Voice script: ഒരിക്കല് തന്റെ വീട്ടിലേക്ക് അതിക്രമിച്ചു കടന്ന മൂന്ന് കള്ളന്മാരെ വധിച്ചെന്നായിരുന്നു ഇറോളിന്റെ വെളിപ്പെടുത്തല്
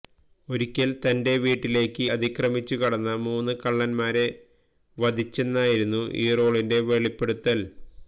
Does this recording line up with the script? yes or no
yes